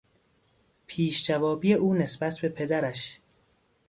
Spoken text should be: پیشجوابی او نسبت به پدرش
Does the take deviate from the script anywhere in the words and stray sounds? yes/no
no